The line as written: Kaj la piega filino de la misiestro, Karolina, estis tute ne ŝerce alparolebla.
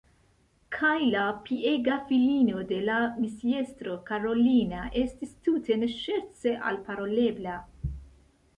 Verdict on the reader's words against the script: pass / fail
pass